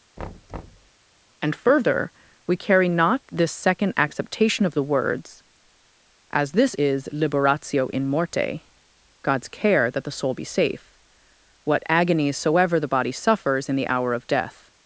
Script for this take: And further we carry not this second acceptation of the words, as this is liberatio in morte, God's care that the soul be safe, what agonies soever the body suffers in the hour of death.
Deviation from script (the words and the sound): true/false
true